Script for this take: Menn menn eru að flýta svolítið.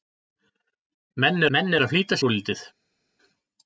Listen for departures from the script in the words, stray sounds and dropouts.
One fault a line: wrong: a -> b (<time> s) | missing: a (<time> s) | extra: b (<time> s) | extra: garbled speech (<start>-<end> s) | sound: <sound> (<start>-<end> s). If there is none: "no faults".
no faults